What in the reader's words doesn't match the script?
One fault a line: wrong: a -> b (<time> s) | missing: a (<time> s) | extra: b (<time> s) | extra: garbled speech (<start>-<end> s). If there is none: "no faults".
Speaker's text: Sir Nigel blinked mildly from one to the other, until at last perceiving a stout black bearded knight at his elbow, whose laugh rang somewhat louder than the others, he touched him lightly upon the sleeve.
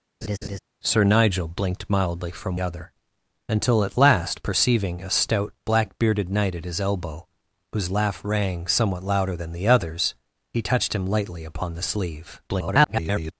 missing: one to the (2.6 s)
extra: garbled speech (12.5-13.3 s)